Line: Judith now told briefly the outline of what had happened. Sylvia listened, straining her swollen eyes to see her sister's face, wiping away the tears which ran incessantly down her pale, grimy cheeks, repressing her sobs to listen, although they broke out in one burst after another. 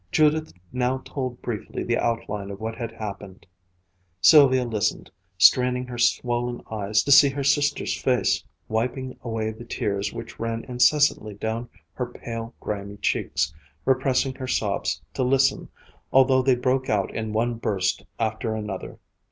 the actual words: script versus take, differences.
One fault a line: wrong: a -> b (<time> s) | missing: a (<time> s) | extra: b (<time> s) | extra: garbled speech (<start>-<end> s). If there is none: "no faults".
no faults